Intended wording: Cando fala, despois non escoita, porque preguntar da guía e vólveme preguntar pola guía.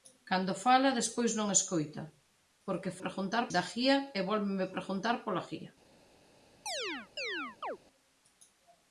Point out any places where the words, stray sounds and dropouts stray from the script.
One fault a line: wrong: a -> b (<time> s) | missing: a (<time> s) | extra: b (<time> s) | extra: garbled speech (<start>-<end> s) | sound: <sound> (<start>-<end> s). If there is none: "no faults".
sound: chirp (6.7-7.8 s)